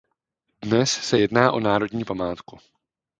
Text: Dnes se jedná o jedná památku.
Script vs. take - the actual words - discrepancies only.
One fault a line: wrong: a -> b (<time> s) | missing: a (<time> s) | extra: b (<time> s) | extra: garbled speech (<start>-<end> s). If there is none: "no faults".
wrong: jedná -> národní (1.6 s)